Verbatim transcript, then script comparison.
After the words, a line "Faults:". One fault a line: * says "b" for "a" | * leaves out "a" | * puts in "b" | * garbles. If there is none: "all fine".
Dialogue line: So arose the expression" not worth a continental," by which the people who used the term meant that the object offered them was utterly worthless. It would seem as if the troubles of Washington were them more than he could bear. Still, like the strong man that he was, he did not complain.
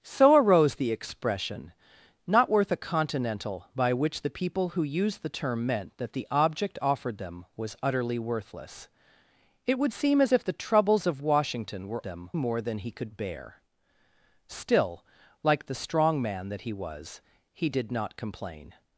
So arose the expression" not worth a continental," by which the people who used the term meant that the object offered them was utterly worthless. It would seem as if the troubles of Washington were them more than he could bear. Still, like the strong man that he was, he did not complain.
Faults:
all fine